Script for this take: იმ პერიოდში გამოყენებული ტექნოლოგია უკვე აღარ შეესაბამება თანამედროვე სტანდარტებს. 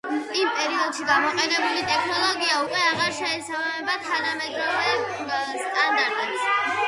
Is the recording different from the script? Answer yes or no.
no